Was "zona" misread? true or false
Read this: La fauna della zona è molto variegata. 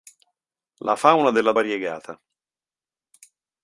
true